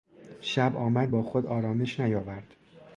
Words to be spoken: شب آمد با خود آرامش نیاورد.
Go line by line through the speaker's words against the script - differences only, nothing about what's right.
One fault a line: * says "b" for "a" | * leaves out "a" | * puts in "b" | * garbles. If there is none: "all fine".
all fine